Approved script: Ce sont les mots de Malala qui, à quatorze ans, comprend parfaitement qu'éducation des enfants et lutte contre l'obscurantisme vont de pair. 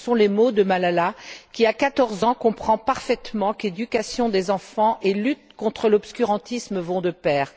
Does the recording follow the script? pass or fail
pass